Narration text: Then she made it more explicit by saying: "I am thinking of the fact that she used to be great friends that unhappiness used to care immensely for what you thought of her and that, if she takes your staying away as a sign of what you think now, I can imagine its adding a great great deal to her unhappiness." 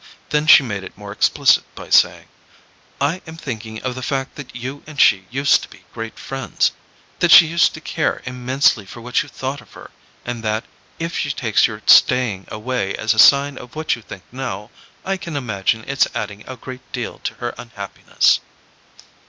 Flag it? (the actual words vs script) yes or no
yes